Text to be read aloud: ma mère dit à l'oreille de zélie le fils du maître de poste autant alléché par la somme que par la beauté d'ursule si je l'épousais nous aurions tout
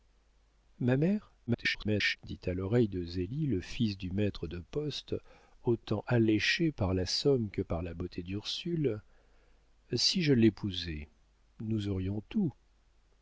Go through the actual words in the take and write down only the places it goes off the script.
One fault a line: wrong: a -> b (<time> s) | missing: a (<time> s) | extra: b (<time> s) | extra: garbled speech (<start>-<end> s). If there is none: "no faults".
extra: garbled speech (1.5-2.2 s)